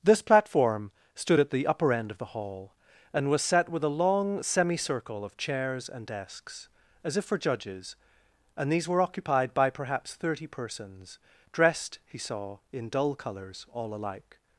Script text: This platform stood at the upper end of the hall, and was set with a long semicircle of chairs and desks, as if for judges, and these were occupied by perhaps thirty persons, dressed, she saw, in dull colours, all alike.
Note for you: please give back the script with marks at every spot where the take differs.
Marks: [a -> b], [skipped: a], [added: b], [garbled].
This platform stood at the upper end of the hall, and was set with a long semicircle of chairs and desks, as if for judges, and these were occupied by perhaps thirty persons, dressed, [she -> he] saw, in dull colours, all alike.